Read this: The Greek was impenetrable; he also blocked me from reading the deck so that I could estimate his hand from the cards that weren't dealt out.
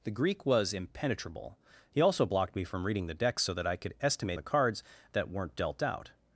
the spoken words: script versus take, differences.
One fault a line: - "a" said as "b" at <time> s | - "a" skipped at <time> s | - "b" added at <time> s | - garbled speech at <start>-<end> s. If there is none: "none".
- "his hand from" skipped at 4.4 s